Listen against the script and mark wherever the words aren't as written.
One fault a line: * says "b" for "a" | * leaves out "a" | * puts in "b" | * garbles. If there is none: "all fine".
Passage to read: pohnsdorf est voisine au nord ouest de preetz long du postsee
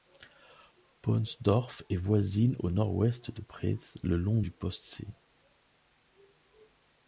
* puts in "le"